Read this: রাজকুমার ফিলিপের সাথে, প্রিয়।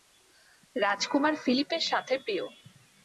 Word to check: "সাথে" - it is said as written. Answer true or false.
true